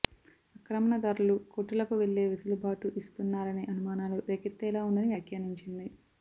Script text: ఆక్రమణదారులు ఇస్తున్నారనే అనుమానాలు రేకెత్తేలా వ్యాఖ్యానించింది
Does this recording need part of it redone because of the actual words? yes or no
yes